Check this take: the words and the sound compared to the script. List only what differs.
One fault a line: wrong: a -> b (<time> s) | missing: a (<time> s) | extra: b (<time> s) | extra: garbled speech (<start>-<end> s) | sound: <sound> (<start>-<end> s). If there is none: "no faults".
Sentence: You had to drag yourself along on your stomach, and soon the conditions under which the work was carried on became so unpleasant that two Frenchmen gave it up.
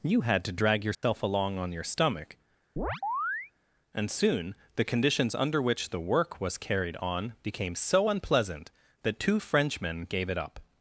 sound: dropout (0.9-1.0 s)
sound: chirp (2.8-3.5 s)